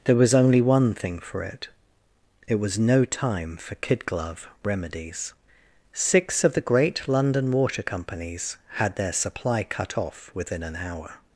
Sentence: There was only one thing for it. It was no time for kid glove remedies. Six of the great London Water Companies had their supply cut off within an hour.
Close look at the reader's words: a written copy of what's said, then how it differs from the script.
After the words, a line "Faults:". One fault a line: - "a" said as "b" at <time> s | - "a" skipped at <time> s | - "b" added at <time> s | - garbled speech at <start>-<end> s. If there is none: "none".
There was only one thing for it. It was no time for kid glove remedies. Six of the great London Water Companies had their supply cut off within an hour.
Faults:
none